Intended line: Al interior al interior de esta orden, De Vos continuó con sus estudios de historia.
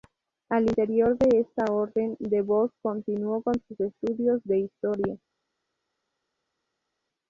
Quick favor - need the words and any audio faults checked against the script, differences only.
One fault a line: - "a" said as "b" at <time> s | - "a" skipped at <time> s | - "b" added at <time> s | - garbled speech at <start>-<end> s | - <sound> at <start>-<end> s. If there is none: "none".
- "al interior" skipped at 1.1 s